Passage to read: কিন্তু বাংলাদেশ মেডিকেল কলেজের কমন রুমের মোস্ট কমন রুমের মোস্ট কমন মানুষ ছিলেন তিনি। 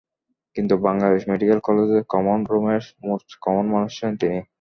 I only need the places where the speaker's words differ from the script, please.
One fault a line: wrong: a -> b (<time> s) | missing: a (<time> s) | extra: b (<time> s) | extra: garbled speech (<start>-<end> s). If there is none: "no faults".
missing: রুমের মোস্ট কমন (3.6 s)